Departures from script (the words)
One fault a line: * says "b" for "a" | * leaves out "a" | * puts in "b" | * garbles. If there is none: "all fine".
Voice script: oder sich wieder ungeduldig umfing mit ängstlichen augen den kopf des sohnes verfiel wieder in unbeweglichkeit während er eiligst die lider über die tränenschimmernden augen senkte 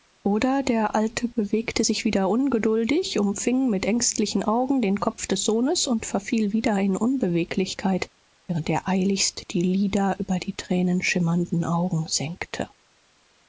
* puts in "der alte bewegte"
* puts in "und"